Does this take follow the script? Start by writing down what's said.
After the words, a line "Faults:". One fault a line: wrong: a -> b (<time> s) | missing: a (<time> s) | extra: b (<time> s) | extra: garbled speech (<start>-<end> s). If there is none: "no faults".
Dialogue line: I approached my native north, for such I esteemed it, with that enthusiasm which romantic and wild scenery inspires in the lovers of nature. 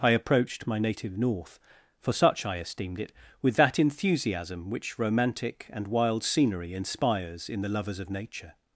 I approached my native north, for such I esteemed it, with that enthusiasm which romantic and wild scenery inspires in the lovers of nature.
Faults:
no faults